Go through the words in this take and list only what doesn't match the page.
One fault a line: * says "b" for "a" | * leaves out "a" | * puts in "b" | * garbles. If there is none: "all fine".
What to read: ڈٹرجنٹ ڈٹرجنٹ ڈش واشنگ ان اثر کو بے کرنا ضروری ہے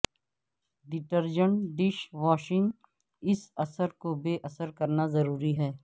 * leaves out "ڈٹرجنٹ"
* says "اس" for "ان"
* puts in "اثر"